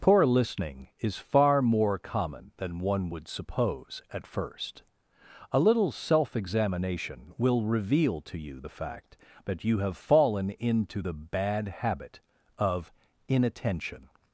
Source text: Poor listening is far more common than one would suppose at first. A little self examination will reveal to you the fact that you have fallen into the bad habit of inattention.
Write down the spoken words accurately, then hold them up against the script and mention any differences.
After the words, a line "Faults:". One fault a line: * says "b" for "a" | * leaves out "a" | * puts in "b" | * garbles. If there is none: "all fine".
Poor listening is far more common than one would suppose at first. A little self examination will reveal to you the fact that you have fallen into the bad habit of inattention.
Faults:
all fine